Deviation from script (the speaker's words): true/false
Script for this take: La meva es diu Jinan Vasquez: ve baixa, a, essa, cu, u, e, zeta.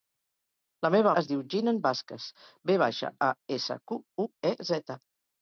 false